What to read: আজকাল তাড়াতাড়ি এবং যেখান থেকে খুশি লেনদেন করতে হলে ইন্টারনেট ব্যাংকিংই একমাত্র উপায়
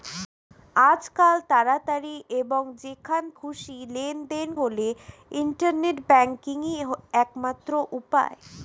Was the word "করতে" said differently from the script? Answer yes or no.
yes